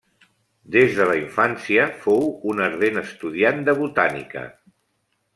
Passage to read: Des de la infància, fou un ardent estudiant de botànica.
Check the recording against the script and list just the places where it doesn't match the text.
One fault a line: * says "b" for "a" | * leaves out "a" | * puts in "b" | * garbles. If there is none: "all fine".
all fine